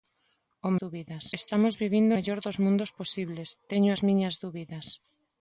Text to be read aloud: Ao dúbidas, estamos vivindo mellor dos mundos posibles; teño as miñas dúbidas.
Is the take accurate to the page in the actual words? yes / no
yes